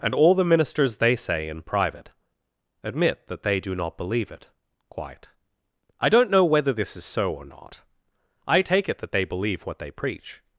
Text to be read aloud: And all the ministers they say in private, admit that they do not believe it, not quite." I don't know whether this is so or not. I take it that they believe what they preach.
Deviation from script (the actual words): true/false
true